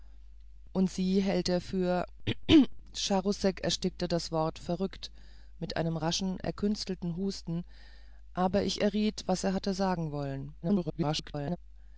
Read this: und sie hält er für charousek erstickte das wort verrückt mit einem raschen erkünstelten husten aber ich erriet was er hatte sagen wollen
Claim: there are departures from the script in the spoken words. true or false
true